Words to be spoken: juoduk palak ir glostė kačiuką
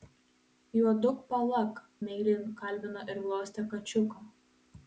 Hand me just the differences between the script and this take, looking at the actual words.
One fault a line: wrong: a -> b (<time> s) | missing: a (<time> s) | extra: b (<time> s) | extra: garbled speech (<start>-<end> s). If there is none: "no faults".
extra: meiliai kalbino (2.1 s)